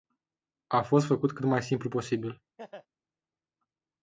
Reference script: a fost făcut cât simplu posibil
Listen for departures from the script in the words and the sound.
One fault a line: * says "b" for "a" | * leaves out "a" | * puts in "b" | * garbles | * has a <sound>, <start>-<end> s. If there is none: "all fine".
* puts in "mai"
* has a laugh, 2.6-2.9 s